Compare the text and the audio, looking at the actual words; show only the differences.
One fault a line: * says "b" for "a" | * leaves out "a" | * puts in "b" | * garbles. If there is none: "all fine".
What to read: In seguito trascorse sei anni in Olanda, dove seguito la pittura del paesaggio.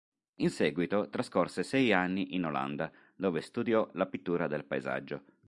* says "studiò" for "seguito"